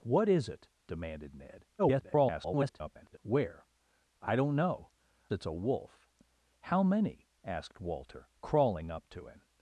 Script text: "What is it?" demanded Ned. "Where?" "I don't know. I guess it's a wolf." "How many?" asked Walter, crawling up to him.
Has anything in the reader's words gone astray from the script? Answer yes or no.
yes